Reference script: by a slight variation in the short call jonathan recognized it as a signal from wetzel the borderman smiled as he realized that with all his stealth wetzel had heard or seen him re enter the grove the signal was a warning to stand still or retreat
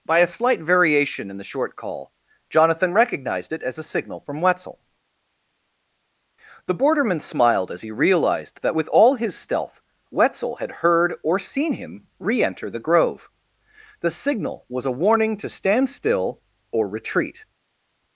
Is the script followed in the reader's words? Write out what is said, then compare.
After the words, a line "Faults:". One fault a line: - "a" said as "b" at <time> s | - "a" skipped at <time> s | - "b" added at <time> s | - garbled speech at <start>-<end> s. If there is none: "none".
by a slight variation in the short call jonathan recognized it as a signal from wetzel the borderman smiled as he realized that with all his stealth wetzel had heard or seen him re enter the grove the signal was a warning to stand still or retreat
Faults:
none